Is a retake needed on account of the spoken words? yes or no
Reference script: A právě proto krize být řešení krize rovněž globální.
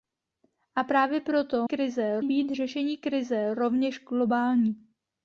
no